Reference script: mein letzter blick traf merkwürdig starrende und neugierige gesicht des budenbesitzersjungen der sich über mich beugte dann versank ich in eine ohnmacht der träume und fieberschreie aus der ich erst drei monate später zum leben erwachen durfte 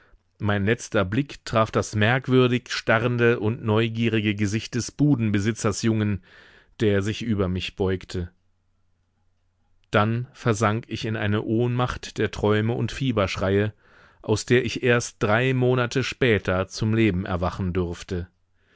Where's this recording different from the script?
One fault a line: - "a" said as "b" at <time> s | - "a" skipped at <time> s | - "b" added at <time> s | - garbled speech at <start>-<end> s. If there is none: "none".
- "das" added at 1.7 s